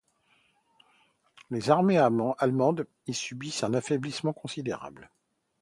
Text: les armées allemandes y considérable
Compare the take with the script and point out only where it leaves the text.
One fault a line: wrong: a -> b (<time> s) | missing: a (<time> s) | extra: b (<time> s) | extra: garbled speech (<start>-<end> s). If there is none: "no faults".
extra: subissent un affaiblissement (3.1 s)